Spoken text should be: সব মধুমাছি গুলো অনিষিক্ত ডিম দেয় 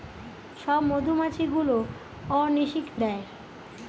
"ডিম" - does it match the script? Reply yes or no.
no